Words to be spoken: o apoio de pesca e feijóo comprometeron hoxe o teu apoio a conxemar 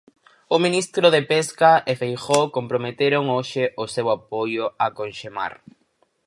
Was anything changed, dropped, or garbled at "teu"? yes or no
yes